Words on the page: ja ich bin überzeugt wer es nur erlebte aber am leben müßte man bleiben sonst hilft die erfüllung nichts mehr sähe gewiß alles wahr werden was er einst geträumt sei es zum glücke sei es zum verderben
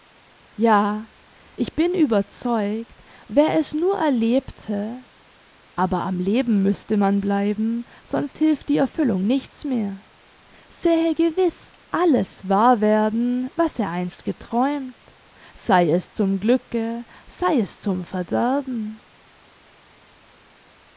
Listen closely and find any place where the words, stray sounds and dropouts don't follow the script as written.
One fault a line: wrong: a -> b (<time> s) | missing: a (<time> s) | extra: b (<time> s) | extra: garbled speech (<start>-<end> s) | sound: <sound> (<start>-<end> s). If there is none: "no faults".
no faults